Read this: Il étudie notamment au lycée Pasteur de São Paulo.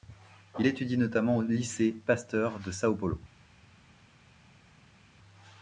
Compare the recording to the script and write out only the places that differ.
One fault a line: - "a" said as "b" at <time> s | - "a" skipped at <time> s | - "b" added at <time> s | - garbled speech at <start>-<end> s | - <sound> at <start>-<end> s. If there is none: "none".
none